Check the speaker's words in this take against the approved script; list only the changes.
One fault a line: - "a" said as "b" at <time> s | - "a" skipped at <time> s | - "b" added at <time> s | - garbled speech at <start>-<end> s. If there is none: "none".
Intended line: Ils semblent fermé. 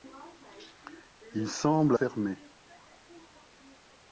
none